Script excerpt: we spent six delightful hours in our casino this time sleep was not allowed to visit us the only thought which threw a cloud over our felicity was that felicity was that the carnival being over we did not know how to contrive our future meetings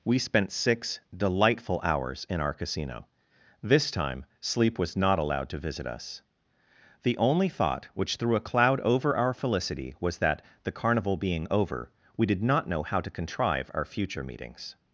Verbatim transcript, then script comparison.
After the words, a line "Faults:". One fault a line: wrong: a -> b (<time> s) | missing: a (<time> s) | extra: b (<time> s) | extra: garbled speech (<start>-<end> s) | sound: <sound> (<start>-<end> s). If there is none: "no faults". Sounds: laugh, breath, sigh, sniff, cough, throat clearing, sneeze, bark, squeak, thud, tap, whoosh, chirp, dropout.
we spent six delightful hours in our casino this time sleep was not allowed to visit us the only thought which threw a cloud over our felicity was that the carnival being over we did not know how to contrive our future meetings
Faults:
missing: felicity was that (10.4 s)